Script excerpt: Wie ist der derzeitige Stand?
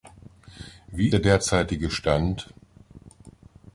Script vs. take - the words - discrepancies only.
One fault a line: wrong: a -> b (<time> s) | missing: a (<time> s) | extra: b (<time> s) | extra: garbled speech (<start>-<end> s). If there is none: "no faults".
missing: ist (1.1 s)